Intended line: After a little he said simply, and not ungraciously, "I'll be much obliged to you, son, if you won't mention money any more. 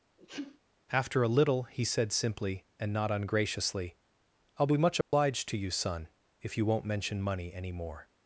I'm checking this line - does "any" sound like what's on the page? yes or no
yes